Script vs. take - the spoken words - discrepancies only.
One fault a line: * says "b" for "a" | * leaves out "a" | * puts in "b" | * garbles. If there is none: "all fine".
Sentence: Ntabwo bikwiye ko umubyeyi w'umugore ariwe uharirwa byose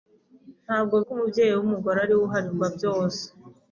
* leaves out "bikwiye"